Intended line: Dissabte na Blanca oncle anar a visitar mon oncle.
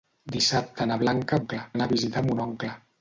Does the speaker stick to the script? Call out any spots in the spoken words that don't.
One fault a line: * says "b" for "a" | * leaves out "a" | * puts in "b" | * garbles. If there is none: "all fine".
all fine